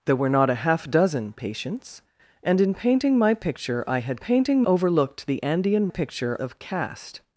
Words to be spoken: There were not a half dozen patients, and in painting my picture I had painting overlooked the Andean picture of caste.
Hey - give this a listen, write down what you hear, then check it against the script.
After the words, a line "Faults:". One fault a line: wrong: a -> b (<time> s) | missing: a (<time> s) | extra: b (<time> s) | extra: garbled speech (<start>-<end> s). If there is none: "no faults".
There were not a half dozen patients, and in painting my picture I had painting overlooked the Andean picture of caste.
Faults:
no faults